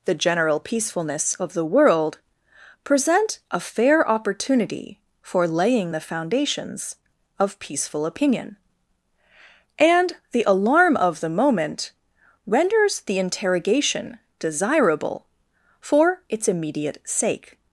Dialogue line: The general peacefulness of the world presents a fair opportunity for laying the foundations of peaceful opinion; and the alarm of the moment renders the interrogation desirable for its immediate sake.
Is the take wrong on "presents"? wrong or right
wrong